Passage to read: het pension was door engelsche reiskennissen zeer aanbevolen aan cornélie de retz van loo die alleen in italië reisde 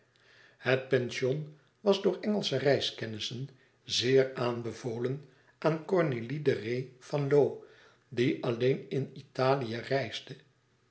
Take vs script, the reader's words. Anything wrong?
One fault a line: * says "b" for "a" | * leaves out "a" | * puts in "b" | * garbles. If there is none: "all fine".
all fine